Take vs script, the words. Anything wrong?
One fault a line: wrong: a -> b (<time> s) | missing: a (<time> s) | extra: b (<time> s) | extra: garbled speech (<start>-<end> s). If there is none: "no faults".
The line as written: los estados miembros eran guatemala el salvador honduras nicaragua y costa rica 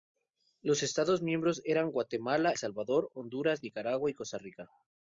missing: el (2.5 s)